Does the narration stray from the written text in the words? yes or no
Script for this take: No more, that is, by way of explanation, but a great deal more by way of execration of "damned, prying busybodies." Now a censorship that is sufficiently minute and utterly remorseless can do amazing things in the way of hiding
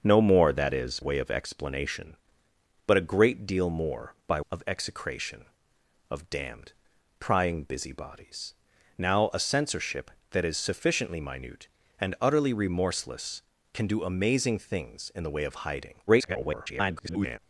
yes